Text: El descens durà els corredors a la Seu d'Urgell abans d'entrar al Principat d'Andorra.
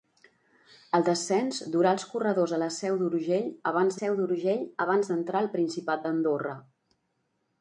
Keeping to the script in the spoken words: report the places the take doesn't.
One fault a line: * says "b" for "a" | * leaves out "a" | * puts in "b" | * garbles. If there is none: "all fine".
* puts in "Seu d'Urgell abans"